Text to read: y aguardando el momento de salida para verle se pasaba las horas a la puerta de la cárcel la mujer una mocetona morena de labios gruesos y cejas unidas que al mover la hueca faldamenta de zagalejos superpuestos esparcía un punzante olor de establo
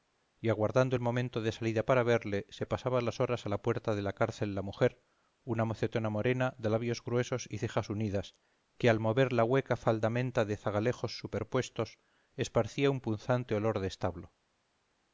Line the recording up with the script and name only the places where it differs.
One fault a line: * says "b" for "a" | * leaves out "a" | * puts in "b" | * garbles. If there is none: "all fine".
all fine